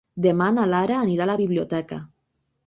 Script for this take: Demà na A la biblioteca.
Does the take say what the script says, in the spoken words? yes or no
no